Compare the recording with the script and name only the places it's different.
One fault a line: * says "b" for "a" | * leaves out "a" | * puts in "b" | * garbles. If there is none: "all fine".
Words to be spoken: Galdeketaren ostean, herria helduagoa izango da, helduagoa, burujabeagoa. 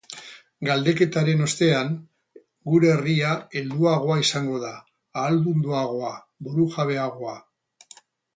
* puts in "gure"
* says "ahaldunduagoa" for "helduagoa"